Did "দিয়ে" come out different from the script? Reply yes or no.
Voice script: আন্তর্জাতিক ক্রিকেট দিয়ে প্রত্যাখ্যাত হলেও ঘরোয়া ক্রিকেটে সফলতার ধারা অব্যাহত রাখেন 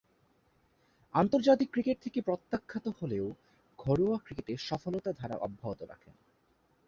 yes